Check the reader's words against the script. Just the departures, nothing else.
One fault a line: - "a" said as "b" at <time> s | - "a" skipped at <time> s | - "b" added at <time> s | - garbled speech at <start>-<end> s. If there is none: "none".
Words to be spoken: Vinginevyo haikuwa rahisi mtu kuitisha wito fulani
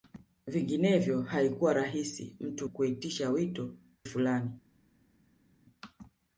none